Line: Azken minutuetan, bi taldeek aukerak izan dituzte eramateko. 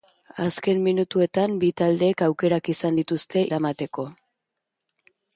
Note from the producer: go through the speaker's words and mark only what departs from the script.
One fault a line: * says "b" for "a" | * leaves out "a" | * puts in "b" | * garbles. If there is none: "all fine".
all fine